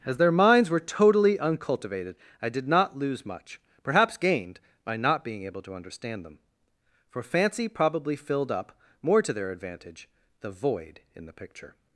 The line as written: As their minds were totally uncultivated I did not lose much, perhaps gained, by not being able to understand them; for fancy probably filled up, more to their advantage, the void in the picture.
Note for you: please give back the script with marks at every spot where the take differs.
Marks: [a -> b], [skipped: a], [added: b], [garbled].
As their minds were totally uncultivated I did not lose much, perhaps gained, by not being able to understand them; for fancy probably filled up, more to their advantage, the void in the picture.